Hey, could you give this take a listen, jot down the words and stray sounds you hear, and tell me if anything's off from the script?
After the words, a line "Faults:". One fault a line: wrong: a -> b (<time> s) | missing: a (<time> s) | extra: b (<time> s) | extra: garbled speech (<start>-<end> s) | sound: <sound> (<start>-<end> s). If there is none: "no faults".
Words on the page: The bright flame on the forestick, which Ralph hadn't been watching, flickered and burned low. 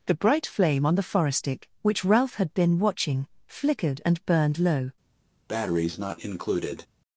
The bright flame on the forestick, which Ralph had been watching, flickered and burned low.
Faults:
wrong: hadn't -> had (2.4 s)
sound: breath (5.5-6.9 s)